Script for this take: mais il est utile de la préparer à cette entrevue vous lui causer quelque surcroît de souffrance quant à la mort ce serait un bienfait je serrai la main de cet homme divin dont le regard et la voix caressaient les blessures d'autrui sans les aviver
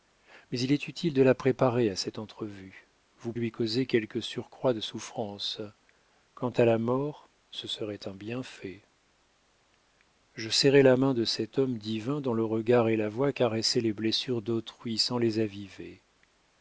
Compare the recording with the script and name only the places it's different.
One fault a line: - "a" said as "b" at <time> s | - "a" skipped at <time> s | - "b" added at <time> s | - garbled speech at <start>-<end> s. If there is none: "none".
none